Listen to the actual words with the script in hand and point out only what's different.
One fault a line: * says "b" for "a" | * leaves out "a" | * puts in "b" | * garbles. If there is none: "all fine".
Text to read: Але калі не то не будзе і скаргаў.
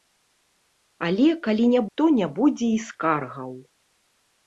all fine